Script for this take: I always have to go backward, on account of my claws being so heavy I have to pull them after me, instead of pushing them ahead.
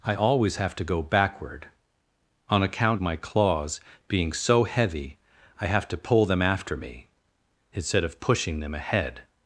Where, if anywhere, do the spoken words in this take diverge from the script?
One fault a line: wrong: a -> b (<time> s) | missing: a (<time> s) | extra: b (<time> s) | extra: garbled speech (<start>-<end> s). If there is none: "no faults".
missing: of (3.0 s)